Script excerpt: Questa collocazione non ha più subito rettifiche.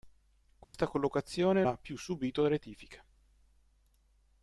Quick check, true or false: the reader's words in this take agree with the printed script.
false